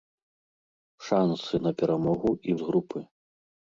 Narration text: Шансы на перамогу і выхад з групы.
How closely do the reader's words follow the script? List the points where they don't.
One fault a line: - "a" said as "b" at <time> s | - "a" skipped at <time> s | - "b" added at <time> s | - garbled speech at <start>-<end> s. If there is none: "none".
- "выхад" skipped at 2.6 s